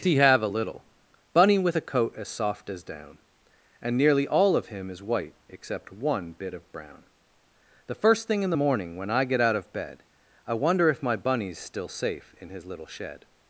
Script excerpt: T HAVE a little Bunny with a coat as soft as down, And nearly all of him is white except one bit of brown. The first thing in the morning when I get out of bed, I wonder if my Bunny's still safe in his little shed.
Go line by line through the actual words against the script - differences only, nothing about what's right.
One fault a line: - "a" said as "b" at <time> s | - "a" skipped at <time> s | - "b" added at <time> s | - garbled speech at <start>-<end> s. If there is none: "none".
- "T" said as "He" at 0.0 s